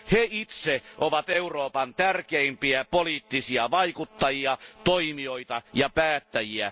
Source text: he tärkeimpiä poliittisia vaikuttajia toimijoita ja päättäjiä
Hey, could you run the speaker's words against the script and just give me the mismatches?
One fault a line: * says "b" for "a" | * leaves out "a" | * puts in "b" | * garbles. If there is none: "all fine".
* puts in "itse ovat euroopan"